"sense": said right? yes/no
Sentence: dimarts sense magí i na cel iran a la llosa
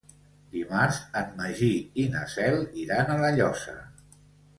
no